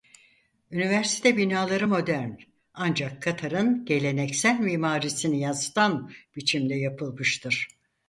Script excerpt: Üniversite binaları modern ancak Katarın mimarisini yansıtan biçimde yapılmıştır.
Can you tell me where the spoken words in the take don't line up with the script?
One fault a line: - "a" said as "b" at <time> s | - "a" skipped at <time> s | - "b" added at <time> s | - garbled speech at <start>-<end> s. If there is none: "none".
- "geleneksel" added at 3.8 s